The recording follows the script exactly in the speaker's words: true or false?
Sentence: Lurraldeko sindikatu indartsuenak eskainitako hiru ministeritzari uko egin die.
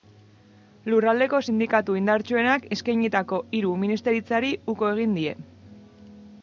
true